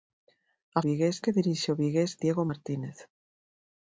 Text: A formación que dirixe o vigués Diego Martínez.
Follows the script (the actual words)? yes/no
no